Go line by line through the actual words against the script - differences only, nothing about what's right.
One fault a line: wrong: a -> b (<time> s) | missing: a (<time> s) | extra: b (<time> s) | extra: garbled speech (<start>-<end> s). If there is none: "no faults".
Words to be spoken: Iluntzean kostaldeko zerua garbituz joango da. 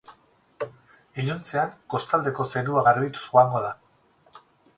no faults